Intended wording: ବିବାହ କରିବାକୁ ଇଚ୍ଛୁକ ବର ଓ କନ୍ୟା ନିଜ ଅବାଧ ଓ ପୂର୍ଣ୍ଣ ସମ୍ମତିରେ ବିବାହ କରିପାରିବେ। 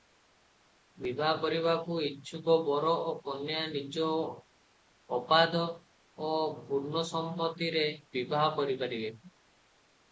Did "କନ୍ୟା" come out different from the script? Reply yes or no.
no